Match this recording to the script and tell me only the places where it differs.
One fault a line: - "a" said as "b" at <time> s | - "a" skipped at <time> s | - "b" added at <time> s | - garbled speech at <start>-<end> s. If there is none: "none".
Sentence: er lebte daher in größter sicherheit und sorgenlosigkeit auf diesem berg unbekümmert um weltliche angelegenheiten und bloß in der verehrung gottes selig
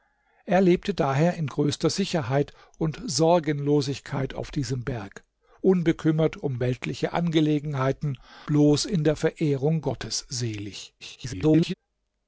- "und" skipped at 8.2 s
- garbled speech at 11.0-11.7 s